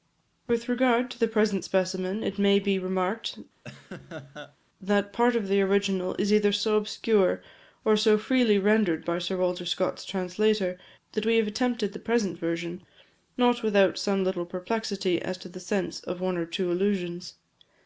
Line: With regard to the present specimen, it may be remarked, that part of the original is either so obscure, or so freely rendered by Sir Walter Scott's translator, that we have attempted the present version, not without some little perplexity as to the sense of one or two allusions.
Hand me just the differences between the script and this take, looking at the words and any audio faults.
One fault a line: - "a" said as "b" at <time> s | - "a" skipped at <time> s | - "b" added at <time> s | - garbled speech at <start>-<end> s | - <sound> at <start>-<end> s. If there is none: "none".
- laugh at 3.6-4.6 s